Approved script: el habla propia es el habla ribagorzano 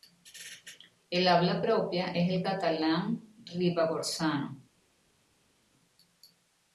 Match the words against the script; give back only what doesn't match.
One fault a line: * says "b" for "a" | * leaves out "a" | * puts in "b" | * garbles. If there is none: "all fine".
* says "catalán" for "habla"